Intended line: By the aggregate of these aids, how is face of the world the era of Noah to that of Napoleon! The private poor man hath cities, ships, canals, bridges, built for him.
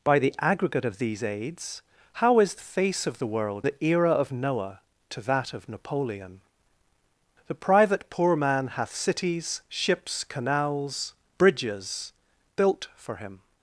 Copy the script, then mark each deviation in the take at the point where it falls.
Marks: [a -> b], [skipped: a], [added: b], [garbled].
By the aggregate of these aids, how is face of the world the era of Noah to that of Napoleon! The private poor man hath cities, ships, canals, bridges, built for him.